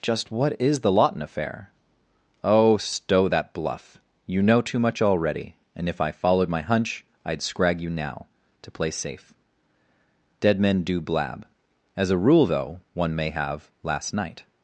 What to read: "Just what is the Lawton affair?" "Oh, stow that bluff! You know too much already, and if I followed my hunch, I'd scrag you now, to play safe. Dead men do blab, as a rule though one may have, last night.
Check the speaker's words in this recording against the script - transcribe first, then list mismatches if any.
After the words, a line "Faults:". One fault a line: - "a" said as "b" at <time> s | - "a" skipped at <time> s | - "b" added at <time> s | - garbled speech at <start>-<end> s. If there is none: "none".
"Just what is the Lawton affair?" "Oh, stow that bluff! You know too much already, and if I followed my hunch, I'd scrag you now, to play safe. Dead men do blab, as a rule though one may have, last night.
Faults:
none